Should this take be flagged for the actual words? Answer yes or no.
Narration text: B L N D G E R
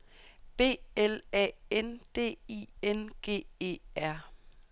yes